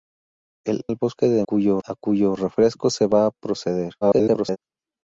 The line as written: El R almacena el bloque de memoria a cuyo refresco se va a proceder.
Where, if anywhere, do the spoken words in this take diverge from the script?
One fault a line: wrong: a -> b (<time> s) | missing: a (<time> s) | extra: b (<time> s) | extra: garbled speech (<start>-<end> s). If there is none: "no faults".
missing: R almacena (0.8 s)
wrong: memoria -> cuyo (1.4 s)
extra: garbled speech (4.0-4.6 s)